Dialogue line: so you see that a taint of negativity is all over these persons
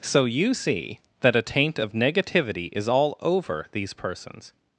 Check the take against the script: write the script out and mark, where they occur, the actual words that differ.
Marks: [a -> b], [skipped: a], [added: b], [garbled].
so you see that a taint of negativity is all over these persons